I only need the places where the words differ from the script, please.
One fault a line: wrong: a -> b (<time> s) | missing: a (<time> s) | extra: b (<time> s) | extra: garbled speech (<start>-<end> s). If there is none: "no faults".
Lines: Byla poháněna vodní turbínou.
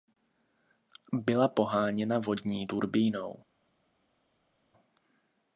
no faults